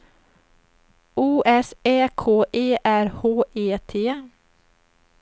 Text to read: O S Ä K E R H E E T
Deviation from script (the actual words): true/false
true